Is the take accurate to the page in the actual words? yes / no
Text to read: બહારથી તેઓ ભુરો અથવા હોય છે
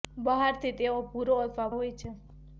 yes